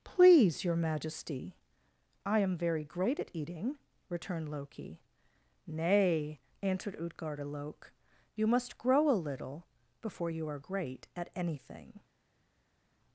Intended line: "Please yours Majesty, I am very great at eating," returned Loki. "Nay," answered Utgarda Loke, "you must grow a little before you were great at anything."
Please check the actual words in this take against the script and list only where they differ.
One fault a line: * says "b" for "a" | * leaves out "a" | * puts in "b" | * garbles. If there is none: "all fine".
* says "your" for "yours"
* says "are" for "were"